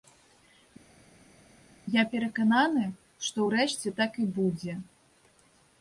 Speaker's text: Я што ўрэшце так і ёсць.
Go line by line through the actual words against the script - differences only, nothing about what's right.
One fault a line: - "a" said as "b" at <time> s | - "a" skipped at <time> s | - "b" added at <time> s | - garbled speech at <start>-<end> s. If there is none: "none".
- "перакананы" added at 2.1 s
- "ёсць" said as "будзе" at 4.4 s